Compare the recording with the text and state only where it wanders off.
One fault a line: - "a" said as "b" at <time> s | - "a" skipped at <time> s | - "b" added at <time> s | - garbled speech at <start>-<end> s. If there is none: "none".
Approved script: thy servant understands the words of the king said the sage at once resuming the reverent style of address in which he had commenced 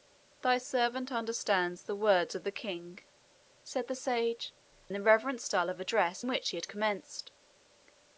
- "at once resuming" skipped at 4.5 s
- "in" skipped at 6.2 s